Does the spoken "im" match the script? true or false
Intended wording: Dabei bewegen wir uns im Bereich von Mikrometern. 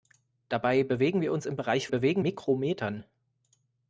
true